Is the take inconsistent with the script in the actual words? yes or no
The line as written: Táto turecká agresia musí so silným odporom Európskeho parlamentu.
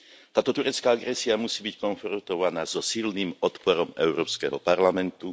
yes